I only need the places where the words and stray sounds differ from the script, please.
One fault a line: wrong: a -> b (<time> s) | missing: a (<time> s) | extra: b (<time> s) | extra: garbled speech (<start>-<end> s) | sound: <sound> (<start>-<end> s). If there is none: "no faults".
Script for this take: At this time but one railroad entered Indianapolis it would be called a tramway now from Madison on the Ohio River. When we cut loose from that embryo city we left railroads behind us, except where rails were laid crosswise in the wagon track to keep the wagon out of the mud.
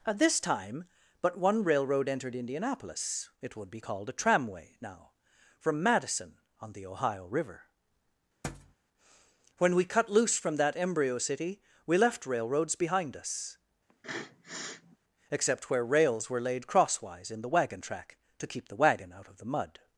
sound: thud (8.4-8.8 s)
sound: sniff (13.9-15.0 s)